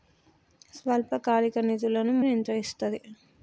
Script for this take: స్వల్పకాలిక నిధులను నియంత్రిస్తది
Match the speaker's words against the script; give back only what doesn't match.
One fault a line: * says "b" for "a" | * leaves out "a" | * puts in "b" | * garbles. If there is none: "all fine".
all fine